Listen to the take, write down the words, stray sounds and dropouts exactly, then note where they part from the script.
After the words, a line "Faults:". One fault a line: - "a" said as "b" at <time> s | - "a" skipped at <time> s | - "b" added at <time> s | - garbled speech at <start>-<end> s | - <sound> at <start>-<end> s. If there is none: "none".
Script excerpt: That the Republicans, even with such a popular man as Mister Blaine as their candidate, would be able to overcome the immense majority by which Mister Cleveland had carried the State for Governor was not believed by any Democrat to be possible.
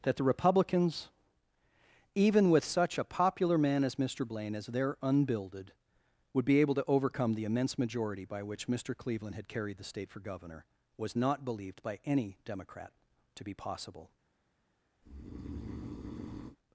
That the Republicans, even with such a popular man as Mister Blaine as their unbuilded, would be able to overcome the immense majority by which Mister Cleveland had carried the State for Governor was not believed by any Democrat to be possible.
Faults:
- "candidate" said as "unbuilded" at 5.0 s
- breath at 15.0-16.6 s